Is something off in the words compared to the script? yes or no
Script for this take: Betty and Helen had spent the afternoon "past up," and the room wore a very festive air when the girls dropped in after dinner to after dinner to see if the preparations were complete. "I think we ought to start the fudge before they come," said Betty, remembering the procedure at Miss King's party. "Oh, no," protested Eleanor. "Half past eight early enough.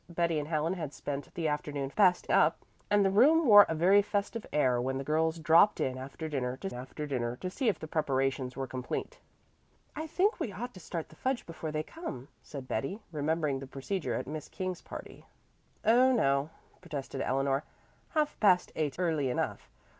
no